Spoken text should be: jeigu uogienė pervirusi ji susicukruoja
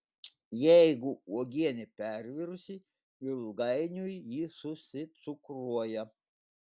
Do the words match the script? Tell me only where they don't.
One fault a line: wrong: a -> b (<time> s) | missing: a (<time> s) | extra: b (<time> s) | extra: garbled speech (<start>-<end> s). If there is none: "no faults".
extra: ilgainiui (3.3 s)